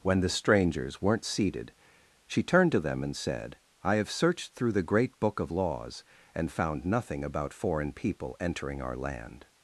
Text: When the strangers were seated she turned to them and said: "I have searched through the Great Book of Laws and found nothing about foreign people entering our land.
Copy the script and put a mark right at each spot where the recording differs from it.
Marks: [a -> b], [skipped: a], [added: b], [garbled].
When the strangers [were -> weren't] seated she turned to them and said: "I have searched through the Great Book of Laws and found nothing about foreign people entering our land.